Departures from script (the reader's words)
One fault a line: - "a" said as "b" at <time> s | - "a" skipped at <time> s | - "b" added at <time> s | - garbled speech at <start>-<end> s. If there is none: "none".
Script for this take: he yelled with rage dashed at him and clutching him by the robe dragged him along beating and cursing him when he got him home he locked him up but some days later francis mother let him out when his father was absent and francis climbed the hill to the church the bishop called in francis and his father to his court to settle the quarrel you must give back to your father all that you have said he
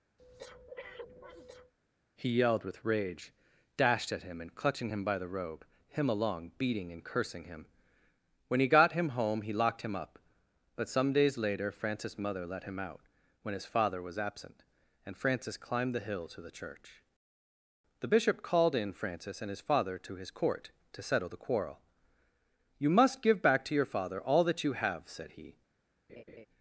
- "dragged" skipped at 5.6 s